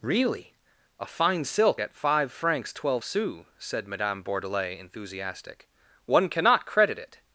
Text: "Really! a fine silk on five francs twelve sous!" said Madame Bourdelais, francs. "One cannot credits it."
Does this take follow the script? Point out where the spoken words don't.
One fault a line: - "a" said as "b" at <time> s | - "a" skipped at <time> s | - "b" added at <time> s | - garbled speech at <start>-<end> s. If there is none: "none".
- "on" said as "at" at 1.8 s
- "francs" said as "enthusiastic" at 4.8 s
- "credits" said as "credit" at 6.7 s